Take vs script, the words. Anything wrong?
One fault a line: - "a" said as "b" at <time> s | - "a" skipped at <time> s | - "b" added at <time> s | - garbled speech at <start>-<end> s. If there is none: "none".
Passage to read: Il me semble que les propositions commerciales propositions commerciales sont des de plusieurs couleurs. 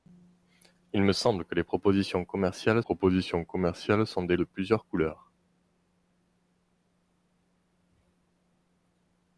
none